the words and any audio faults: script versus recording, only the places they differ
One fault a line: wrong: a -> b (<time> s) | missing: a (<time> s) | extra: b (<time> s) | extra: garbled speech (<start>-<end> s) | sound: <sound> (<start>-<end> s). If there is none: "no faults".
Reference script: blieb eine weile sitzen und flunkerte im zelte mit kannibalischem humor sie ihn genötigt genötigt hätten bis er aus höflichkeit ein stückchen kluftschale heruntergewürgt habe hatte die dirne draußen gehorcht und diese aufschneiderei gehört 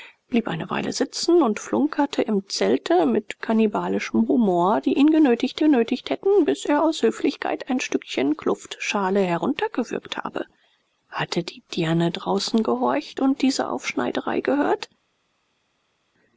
no faults